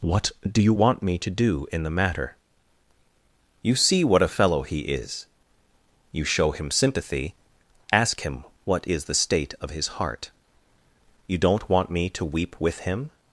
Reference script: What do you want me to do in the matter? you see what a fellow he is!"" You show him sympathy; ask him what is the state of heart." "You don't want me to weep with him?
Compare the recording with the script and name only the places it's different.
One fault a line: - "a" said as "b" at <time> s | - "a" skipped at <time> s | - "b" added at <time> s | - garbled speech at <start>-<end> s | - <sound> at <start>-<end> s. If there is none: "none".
- "his" added at 9.7 s